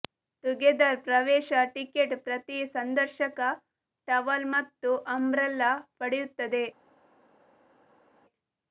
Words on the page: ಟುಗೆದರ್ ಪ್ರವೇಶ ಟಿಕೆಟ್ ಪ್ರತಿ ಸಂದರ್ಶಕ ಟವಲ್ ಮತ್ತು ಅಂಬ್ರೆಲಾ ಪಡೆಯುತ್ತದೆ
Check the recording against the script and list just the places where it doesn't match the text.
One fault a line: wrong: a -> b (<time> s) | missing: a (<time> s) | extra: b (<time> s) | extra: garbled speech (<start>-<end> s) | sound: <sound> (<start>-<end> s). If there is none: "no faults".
no faults